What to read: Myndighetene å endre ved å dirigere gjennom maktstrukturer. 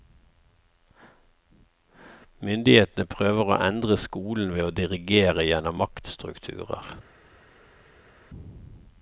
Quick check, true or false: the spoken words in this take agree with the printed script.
false